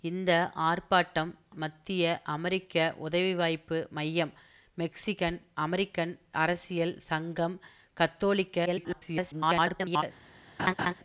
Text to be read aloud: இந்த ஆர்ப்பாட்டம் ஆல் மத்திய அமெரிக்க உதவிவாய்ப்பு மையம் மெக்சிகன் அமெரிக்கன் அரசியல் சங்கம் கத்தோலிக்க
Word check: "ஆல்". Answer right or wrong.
wrong